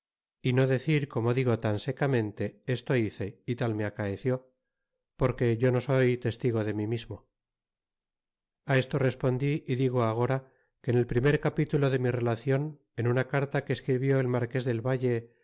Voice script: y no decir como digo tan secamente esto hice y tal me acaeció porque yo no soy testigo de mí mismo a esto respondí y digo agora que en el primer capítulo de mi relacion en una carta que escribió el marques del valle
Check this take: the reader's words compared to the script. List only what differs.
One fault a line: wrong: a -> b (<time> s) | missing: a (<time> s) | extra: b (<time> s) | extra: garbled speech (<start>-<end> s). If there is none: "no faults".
no faults